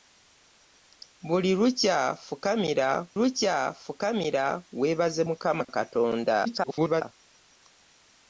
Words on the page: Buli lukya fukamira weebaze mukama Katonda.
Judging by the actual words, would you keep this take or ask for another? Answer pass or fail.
fail